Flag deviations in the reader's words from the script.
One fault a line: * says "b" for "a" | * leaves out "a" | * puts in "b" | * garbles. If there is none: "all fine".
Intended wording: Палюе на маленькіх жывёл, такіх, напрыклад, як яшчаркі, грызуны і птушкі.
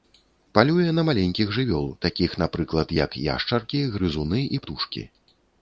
all fine